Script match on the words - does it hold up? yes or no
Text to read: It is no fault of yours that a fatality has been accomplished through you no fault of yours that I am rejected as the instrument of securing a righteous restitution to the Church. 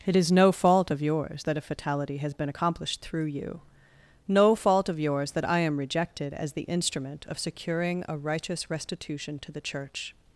yes